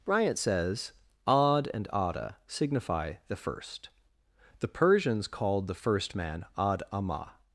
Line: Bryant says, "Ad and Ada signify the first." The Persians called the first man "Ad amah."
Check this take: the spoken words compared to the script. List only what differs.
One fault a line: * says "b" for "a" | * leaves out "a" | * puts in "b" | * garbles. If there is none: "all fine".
all fine